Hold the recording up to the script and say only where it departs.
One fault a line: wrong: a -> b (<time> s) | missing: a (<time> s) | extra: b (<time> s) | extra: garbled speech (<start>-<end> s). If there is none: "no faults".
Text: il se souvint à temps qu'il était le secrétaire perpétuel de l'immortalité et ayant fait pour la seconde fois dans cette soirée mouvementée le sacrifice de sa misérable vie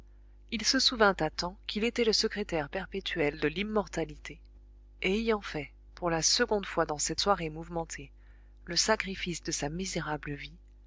no faults